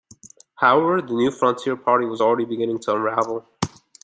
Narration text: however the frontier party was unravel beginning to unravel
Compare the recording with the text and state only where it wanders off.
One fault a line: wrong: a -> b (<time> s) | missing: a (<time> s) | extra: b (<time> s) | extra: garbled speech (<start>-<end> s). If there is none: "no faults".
extra: new (1.1 s)
wrong: unravel -> already (2.2 s)